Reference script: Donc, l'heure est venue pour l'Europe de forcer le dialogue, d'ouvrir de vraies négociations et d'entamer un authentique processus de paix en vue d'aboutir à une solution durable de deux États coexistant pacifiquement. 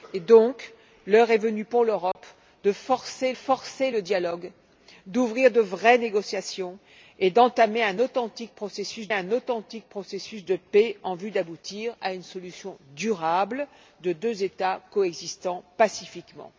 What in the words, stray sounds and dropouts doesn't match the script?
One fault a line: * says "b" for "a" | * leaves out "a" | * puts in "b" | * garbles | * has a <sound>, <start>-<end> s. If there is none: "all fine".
* has a dropout, 2.1-2.2 s
* puts in "forcer"
* puts in "un authentique processus"